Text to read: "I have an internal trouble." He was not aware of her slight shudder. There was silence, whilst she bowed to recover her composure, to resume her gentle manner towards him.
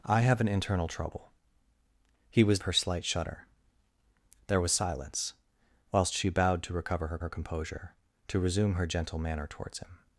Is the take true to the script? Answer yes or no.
no